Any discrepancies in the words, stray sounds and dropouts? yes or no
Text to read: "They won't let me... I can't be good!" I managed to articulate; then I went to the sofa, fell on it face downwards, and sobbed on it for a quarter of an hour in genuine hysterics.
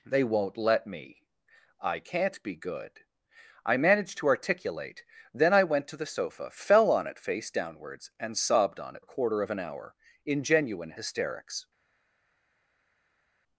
yes